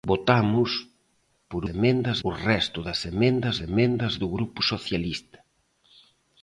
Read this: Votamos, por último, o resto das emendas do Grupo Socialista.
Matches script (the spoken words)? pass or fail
fail